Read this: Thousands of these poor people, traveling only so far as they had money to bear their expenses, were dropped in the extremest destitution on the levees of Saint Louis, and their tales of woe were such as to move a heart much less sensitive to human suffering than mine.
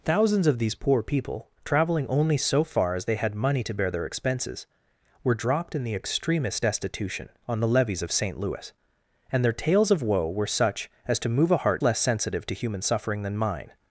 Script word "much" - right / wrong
wrong